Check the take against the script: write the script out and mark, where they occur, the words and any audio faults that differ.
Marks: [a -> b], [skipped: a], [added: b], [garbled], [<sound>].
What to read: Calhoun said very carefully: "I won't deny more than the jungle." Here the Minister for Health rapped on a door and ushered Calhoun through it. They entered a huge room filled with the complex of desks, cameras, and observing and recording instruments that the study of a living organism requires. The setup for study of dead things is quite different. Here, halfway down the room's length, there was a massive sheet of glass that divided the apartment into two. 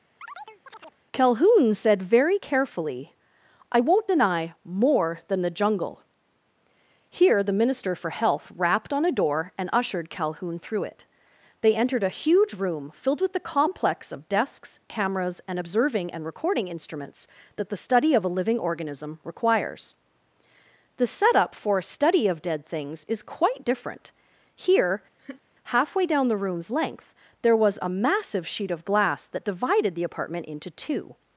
[chirp] Calhoun said very carefully: "I won't deny more than the jungle." Here the Minister for Health rapped on a door and ushered Calhoun through it. They entered a huge room filled with the complex of desks, cameras, and observing and recording instruments that the study of a living organism requires. The setup for [added: a] study of dead things is quite different. Here, [laugh] halfway down the room's length, there was a massive sheet of glass that divided the apartment into two.